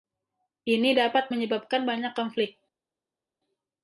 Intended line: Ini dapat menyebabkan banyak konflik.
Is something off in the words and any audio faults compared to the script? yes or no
no